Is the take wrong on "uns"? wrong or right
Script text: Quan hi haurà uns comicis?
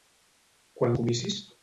wrong